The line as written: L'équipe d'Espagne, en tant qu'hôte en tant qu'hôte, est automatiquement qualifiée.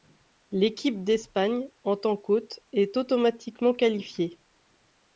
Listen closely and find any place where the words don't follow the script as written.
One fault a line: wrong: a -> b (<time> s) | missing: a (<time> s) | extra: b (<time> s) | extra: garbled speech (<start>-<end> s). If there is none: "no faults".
missing: en tant qu'hôte (2.6 s)